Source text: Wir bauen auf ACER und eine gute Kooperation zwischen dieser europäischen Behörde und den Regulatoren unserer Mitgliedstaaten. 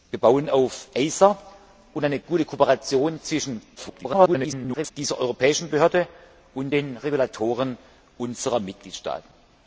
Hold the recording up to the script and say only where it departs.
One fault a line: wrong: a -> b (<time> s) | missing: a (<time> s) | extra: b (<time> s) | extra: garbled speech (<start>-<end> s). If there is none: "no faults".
extra: garbled speech (3.8-4.9 s)